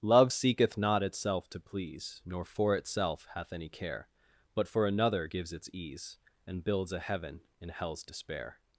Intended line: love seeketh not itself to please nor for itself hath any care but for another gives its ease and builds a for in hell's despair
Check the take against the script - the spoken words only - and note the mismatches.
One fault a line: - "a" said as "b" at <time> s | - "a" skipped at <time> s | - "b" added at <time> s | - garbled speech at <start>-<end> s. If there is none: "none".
- "for" said as "heaven" at 7.0 s